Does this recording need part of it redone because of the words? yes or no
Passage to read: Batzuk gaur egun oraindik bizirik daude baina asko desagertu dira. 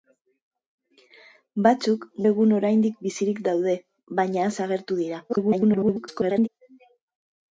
yes